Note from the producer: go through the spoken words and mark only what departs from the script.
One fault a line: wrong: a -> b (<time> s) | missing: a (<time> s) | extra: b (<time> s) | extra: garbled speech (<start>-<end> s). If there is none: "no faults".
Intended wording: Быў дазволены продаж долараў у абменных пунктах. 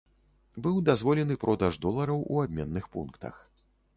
no faults